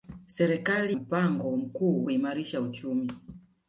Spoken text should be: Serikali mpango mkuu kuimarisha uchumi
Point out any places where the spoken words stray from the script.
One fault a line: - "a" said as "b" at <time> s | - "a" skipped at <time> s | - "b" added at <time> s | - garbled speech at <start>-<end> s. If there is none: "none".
none